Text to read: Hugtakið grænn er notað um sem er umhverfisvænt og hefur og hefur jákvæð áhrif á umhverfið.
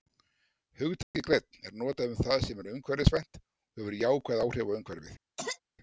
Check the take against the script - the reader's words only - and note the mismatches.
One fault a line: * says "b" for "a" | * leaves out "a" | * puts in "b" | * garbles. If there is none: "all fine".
* puts in "það"
* leaves out "og hefur"